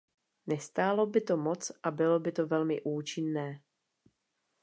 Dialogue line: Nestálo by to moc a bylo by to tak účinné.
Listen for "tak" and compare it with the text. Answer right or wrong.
wrong